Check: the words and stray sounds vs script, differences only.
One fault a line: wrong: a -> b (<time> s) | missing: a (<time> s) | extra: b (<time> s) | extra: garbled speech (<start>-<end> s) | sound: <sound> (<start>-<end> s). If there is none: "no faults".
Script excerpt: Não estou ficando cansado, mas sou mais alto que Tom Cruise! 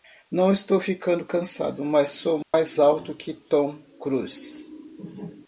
sound: dropout (2.4-2.5 s)